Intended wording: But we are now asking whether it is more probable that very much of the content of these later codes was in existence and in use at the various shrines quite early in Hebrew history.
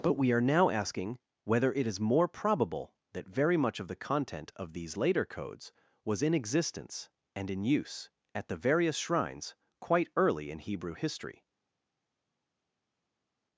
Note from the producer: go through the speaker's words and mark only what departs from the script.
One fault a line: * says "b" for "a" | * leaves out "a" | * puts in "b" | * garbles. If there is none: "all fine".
all fine